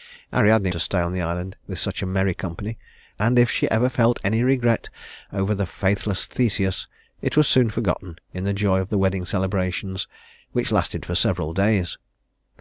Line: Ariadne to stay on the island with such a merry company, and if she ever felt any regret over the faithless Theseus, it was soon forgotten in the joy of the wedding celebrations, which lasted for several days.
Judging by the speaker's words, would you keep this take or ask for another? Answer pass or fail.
pass